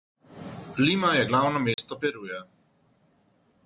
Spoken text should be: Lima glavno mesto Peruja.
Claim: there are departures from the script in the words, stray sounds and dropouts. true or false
true